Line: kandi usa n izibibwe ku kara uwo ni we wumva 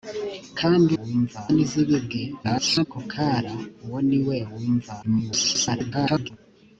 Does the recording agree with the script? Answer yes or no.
no